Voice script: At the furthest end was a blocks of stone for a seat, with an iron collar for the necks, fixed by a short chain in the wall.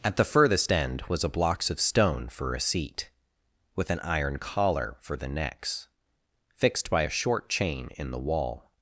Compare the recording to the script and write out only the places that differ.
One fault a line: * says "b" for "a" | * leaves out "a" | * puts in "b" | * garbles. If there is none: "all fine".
all fine